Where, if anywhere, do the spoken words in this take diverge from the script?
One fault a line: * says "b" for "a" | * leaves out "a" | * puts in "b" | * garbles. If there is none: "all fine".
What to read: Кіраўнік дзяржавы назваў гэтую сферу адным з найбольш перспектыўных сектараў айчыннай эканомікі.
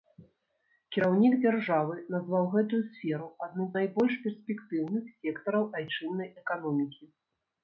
* leaves out "з"